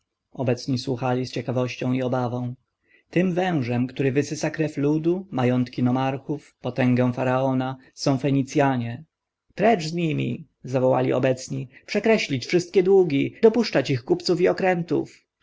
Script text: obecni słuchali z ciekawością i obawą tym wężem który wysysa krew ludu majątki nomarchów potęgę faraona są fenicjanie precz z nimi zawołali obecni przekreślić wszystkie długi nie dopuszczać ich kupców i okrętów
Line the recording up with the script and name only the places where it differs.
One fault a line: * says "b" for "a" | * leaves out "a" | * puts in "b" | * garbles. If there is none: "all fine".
* leaves out "nie"